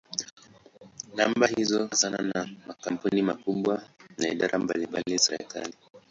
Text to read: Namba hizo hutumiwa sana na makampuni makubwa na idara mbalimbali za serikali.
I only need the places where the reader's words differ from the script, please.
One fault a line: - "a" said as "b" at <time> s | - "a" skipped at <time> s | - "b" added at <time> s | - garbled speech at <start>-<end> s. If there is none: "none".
- "hutumiwa" skipped at 1.9 s
- "za" skipped at 5.2 s